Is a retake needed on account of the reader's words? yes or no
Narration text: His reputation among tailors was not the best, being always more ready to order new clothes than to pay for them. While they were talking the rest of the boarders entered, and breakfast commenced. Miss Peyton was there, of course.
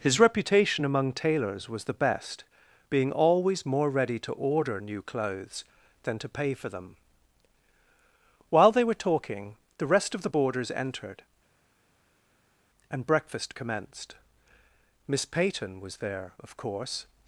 yes